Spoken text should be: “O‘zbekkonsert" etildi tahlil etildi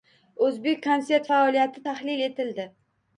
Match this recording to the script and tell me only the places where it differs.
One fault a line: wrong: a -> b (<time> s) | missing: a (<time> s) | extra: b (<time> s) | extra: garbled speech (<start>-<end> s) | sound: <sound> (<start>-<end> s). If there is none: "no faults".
wrong: etildi -> faoliyati (1.3 s)